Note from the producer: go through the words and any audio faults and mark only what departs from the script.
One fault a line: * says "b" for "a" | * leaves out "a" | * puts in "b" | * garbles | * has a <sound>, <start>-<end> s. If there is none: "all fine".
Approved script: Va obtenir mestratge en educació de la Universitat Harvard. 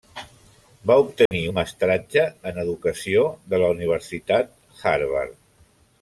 * has a dropout, 1.3-1.3 s